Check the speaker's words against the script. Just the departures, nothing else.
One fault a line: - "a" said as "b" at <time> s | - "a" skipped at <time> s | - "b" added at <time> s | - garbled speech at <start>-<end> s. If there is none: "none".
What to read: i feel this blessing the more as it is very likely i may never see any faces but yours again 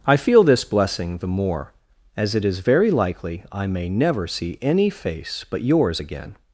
- "faces" said as "face" at 4.9 s